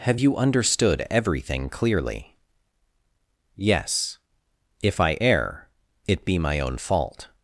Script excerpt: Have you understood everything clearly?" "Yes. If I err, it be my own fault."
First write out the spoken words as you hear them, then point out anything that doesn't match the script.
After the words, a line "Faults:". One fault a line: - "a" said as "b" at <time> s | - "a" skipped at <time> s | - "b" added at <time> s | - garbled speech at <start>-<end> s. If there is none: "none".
Have you understood everything clearly?" "Yes. If I err, it be my own fault."
Faults:
none